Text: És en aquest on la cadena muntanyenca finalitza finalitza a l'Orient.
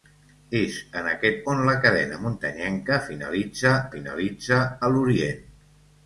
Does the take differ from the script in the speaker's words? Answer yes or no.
no